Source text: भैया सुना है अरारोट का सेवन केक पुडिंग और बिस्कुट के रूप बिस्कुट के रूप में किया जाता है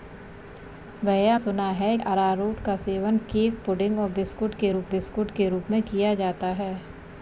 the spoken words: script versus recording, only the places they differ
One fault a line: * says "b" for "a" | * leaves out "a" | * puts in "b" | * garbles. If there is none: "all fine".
all fine